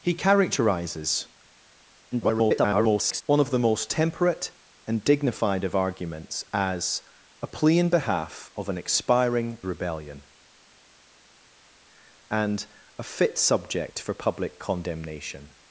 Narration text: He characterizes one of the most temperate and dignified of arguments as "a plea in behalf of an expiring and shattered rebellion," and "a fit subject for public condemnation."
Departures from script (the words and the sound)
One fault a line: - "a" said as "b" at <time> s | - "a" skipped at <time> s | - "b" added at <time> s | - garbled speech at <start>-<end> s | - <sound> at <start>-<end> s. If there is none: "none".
- garbled speech at 2.1-3.2 s
- "and shattered" skipped at 9.6 s